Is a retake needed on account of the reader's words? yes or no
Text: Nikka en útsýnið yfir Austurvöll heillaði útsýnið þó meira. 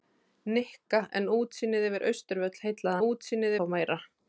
no